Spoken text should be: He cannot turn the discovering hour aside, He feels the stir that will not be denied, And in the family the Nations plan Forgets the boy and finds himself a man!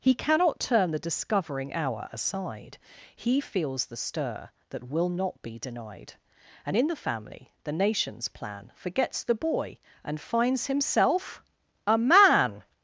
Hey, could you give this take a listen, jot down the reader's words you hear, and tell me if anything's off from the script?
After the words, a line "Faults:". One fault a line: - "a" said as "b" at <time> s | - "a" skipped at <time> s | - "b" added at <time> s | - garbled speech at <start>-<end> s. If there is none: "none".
He cannot turn the discovering hour aside, He feels the stir that will not be denied, And in the family the Nations plan Forgets the boy and finds himself a man!
Faults:
none